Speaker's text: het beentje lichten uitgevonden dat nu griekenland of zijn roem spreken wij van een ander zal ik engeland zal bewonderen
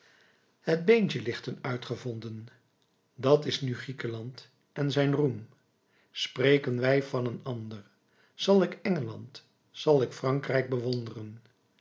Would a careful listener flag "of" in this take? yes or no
yes